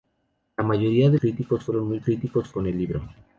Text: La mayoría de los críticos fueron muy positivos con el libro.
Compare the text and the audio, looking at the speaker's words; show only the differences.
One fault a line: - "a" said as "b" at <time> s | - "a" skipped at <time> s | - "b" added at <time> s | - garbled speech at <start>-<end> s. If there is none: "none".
- "los" skipped at 1.2 s
- "positivos" said as "críticos" at 2.0 s